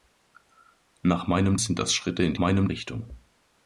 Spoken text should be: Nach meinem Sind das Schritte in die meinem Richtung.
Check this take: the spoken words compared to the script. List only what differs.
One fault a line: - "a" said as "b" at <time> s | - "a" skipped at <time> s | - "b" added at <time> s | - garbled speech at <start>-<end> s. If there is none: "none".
none